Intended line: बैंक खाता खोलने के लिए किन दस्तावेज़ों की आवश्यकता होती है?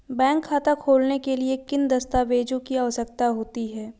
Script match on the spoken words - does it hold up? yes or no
yes